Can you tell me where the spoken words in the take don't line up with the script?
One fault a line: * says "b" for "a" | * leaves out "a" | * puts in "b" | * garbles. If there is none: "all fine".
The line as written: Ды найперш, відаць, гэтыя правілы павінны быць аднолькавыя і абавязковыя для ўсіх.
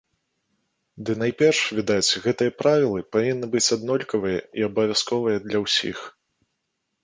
all fine